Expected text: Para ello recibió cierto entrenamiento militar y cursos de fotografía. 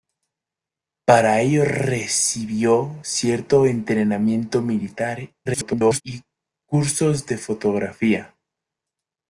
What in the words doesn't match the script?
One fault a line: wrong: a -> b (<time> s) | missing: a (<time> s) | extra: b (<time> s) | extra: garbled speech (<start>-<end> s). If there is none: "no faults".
extra: garbled speech (5.5-6.0 s)